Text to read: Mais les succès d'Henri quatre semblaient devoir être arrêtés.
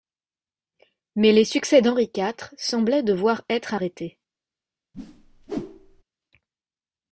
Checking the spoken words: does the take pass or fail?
pass